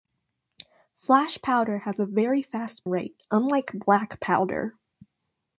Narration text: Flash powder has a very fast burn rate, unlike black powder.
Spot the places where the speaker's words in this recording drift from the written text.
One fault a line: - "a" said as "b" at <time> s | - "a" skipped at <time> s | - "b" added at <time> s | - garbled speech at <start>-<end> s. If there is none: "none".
- "burn" skipped at 2.9 s